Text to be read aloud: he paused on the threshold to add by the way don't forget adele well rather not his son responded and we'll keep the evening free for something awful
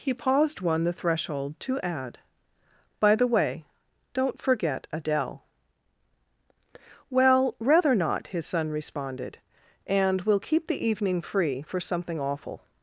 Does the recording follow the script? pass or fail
fail